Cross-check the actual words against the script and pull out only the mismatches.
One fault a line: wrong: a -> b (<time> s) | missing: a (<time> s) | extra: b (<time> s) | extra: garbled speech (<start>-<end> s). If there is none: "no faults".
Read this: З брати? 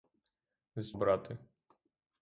no faults